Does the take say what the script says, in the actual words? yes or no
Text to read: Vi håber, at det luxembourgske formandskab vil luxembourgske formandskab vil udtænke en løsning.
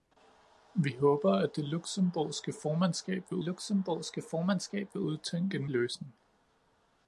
yes